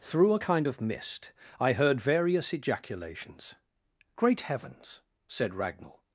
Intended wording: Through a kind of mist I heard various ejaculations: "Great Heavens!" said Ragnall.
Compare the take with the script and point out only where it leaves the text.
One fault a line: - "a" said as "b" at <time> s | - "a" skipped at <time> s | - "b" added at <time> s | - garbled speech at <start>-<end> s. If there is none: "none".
none